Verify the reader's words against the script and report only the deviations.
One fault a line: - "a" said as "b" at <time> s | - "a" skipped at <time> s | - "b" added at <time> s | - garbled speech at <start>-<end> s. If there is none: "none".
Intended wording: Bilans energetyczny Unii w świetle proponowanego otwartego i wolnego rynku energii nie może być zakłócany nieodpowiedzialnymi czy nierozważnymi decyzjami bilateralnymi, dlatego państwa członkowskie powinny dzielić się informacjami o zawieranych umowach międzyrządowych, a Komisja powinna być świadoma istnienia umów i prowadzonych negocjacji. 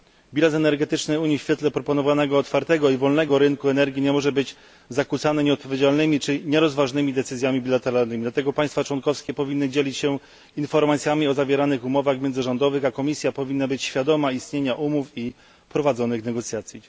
none